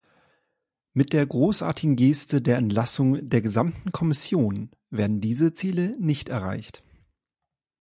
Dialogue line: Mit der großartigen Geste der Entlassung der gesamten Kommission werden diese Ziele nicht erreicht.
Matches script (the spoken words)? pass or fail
pass